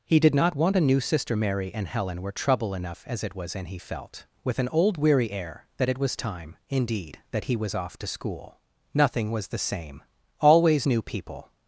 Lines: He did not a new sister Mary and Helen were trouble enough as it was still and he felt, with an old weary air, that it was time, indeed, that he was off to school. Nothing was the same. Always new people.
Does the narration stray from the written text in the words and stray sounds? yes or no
yes